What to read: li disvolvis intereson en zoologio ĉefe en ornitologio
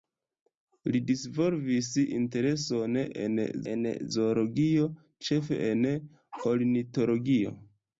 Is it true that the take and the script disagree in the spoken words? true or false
true